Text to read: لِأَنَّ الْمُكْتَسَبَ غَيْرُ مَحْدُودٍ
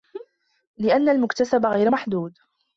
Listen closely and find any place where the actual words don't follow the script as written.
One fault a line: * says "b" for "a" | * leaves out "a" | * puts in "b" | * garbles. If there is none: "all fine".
all fine